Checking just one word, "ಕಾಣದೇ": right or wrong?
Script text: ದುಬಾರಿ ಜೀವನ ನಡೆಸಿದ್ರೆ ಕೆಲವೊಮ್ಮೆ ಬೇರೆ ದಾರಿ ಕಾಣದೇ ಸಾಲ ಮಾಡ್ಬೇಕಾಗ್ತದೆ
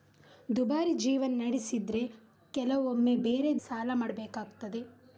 wrong